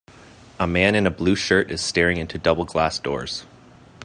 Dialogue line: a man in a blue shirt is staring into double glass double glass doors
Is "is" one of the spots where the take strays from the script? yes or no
no